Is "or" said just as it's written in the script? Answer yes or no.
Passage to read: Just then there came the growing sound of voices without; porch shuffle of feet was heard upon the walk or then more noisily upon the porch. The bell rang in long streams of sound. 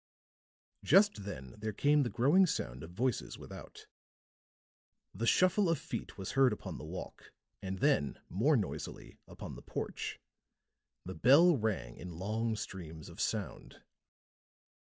no